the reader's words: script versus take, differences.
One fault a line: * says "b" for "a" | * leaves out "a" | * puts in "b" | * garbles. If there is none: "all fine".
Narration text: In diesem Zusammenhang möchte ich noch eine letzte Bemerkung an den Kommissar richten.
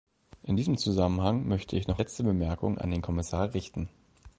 * leaves out "eine"